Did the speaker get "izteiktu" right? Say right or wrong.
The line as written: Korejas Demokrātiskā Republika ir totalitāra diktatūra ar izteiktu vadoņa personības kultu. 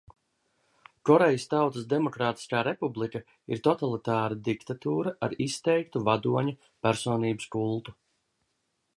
right